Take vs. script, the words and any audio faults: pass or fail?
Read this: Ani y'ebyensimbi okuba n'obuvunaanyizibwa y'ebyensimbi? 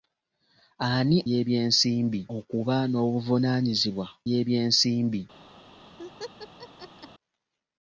fail